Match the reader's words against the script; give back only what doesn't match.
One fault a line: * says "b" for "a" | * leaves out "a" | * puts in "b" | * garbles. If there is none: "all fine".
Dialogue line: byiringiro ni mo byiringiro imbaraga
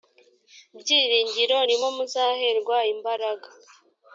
* says "muzaherwa" for "byiringiro"